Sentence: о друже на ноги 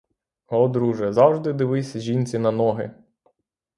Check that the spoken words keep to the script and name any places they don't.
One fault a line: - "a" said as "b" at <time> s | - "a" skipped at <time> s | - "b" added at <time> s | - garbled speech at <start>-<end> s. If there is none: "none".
- "завжди дивись жінці" added at 1.1 s